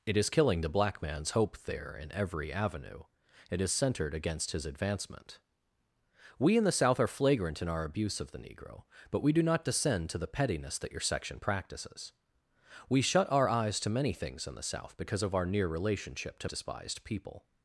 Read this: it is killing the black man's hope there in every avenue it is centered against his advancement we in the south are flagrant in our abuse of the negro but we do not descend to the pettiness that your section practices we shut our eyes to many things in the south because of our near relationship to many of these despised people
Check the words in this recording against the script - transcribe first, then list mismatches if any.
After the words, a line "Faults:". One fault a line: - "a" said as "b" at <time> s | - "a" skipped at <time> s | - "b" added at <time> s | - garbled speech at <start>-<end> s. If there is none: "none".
it is killing the black man's hope there in every avenue it is centered against his advancement we in the south are flagrant in our abuse of the negro but we do not descend to the pettiness that your section practices we shut our eyes to many things in the south because of our near relationship to despised people
Faults:
- "many of these" skipped at 16.5 s